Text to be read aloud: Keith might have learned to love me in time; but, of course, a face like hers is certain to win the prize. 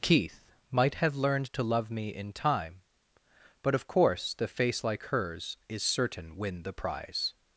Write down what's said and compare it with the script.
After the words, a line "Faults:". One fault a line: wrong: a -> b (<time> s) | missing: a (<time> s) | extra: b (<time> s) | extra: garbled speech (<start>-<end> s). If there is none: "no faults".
Keith might have learned to love me in time; but, of course, the face like hers is certain win the prize.
Faults:
wrong: a -> the (4.3 s)
missing: to (6.4 s)